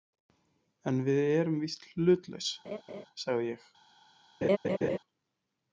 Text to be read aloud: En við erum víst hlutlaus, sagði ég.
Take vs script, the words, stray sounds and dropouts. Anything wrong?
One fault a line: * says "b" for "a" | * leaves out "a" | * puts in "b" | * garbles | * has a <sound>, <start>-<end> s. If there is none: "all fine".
* has a laugh, 2.6-3.1 s
* has a laugh, 4.4-5.0 s